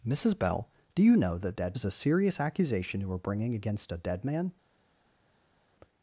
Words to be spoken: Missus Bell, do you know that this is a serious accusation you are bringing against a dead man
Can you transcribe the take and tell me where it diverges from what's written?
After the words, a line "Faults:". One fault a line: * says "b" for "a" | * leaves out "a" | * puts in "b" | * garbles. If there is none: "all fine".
Missus Bell, do you know that dead is a serious accusation you are bringing against a dead man
Faults:
* says "dead" for "this"